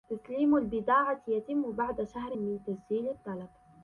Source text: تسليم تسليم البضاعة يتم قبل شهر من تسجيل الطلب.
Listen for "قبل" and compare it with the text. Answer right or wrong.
wrong